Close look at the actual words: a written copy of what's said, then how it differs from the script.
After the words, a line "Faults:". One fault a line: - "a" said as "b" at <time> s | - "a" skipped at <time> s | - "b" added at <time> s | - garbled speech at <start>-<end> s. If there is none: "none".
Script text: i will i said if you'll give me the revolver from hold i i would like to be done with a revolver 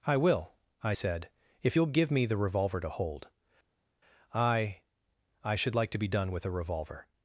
i will i said if you'll give me the revolver to hold i i should like to be done with a revolver
Faults:
- "from" said as "to" at 2.8 s
- "would" said as "should" at 5.5 s